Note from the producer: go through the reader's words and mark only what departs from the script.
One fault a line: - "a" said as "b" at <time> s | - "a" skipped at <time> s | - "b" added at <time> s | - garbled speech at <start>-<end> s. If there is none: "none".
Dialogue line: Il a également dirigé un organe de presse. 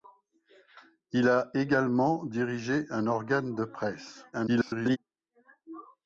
- garbled speech at 4.3-5.0 s